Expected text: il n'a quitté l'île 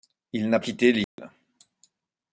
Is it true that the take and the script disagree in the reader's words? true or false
false